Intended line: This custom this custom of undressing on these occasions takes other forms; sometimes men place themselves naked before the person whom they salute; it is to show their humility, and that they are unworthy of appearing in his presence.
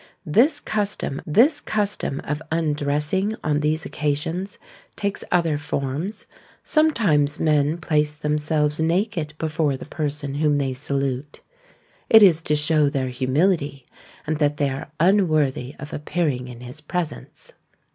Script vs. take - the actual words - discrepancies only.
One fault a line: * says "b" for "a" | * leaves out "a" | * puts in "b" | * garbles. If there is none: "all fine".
all fine